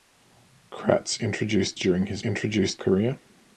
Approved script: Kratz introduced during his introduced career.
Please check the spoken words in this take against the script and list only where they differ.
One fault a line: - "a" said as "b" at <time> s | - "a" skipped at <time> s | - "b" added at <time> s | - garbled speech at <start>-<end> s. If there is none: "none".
none